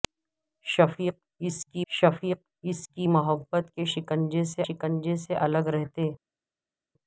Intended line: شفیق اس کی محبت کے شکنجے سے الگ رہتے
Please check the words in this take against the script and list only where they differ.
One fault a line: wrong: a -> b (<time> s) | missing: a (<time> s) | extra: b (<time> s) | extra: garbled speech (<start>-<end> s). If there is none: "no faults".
extra: شفیق اس کی (1.9 s)
extra: شکنجے سے (4.7 s)